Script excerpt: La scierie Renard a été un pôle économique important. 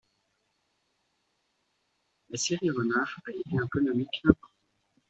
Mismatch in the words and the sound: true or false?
true